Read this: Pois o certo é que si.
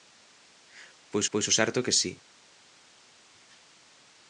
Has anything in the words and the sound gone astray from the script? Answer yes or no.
yes